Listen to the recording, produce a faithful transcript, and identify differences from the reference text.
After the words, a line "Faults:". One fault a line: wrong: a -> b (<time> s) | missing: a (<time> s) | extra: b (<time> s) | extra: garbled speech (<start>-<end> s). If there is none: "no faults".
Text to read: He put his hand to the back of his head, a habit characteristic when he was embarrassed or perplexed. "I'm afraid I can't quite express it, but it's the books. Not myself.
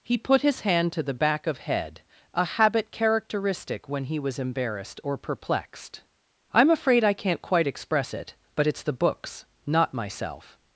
He put his hand to the back of head, a habit characteristic when he was embarrassed or perplexed. "I'm afraid I can't quite express it, but it's the books. Not myself.
Faults:
missing: his (1.6 s)